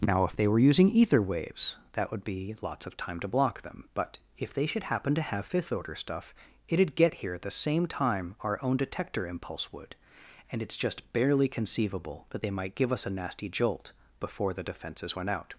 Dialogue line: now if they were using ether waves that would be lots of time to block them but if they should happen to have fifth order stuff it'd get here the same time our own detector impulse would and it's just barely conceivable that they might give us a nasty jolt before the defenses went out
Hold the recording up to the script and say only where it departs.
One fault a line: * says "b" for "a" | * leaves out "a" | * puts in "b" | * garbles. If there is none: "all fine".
* puts in "at"